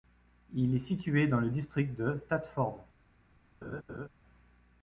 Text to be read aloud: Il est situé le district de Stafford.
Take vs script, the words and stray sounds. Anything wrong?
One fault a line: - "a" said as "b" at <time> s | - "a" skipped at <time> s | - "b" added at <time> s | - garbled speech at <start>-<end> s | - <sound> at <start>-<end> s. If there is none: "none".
- "dans" added at 1.3 s
- laugh at 3.6-4.1 s